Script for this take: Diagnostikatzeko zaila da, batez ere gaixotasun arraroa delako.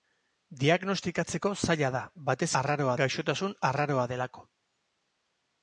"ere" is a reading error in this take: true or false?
true